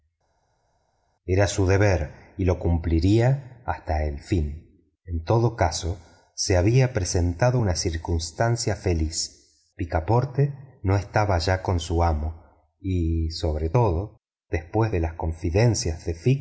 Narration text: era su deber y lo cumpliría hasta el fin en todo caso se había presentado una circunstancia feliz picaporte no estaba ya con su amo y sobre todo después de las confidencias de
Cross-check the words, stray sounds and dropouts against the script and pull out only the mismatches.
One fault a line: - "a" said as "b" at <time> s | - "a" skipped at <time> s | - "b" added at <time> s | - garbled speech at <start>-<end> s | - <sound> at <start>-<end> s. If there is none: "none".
none